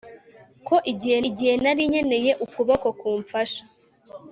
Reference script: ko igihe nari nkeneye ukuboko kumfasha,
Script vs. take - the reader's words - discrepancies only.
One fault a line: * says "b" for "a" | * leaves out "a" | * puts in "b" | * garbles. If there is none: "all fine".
* puts in "igihe"